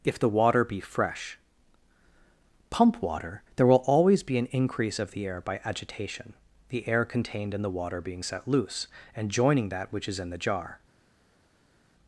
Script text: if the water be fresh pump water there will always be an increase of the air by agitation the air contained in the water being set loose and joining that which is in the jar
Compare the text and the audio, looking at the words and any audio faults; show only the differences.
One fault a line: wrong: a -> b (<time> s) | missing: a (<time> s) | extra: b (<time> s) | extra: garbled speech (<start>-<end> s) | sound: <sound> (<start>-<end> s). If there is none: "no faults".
no faults